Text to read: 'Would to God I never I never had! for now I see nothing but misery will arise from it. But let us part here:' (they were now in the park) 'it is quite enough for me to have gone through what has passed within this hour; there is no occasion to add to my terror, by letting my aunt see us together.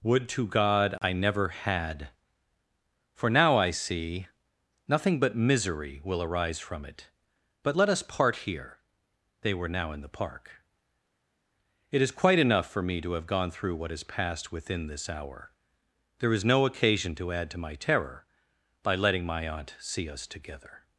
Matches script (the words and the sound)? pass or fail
fail